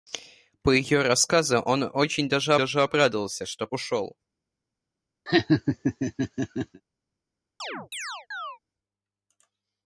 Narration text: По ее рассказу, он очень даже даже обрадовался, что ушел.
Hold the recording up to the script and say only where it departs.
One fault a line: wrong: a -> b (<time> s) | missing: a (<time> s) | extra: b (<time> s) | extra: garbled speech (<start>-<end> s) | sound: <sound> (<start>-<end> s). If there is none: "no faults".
sound: laugh (5.3-6.8 s)
sound: chirp (7.6-8.6 s)